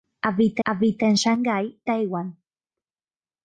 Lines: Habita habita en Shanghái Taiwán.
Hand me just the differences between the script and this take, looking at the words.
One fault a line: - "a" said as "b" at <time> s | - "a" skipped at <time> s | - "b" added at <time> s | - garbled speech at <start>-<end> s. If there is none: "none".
none